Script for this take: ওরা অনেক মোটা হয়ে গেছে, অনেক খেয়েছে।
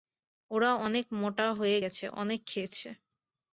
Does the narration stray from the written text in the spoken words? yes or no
no